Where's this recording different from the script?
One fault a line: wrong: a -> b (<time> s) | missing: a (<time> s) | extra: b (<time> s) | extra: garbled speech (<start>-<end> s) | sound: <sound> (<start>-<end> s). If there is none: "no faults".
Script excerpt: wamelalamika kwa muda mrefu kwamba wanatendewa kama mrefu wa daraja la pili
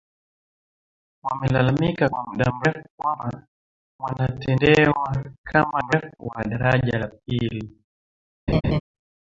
sound: laugh (8.5-8.8 s)